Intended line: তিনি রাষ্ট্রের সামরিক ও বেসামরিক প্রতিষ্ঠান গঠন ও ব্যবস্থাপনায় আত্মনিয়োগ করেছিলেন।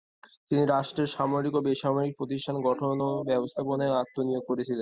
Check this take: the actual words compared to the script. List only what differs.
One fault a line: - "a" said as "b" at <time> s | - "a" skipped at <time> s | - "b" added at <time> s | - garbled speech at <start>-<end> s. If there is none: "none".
none